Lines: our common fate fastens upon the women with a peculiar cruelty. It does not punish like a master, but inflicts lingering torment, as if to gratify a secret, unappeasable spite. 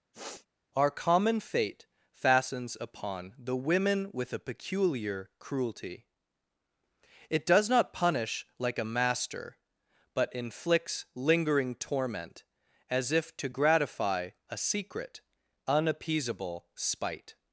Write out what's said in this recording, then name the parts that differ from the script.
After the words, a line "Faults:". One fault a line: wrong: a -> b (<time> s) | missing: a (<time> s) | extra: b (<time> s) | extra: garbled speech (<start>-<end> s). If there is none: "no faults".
our common fate fastens upon the women with a peculiar cruelty. It does not punish like a master, but inflicts lingering torment, as if to gratify a secret, unappeasable spite.
Faults:
no faults